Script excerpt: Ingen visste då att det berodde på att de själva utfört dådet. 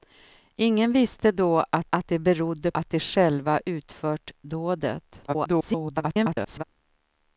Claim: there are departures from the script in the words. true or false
true